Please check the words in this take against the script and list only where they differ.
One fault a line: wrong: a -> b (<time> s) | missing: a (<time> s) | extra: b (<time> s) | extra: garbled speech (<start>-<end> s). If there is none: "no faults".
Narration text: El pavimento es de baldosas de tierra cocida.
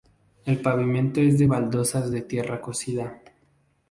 no faults